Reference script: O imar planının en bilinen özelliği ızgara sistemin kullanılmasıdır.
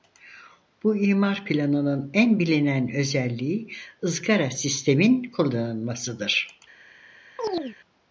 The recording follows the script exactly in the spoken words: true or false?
false